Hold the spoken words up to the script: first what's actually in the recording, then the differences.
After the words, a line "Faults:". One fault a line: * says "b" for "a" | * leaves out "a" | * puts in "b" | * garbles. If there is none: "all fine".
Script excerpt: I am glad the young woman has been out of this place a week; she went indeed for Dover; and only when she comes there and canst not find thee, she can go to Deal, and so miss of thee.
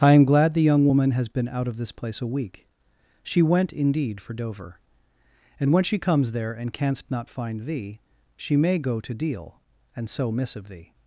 I am glad the young woman has been out of this place a week; she went indeed for Dover; and when she comes there and canst not find thee, she may go to Deal, and so miss of thee.
Faults:
* leaves out "only"
* says "may" for "can"